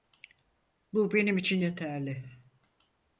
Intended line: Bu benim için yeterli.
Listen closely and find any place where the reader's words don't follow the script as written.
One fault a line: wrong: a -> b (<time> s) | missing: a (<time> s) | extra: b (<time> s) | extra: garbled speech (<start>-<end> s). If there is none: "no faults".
no faults